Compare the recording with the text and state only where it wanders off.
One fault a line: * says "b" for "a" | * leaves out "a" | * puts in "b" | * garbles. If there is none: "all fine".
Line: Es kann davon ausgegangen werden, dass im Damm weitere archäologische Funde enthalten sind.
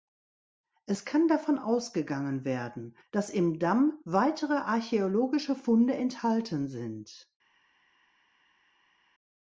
all fine